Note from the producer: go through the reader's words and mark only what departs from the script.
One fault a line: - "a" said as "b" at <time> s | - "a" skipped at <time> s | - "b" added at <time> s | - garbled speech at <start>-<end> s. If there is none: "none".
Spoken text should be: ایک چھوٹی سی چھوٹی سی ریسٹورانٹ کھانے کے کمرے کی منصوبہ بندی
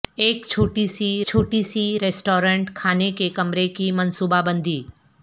none